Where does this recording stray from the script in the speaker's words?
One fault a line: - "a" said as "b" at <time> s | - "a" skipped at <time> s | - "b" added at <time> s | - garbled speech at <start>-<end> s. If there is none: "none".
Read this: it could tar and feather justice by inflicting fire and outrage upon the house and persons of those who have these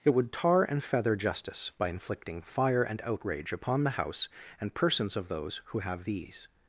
- "could" said as "would" at 0.1 s